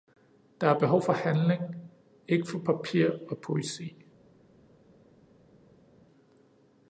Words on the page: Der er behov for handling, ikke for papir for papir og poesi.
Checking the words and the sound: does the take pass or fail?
fail